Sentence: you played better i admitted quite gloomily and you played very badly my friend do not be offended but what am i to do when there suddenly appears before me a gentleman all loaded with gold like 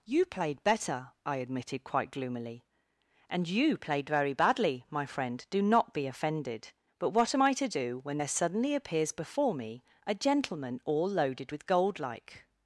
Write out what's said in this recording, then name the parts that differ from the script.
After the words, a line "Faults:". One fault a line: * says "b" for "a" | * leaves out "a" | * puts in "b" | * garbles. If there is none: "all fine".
you played better i admitted quite gloomily and you played very badly my friend do not be offended but what am i to do when there suddenly appears before me a gentleman all loaded with gold like
Faults:
all fine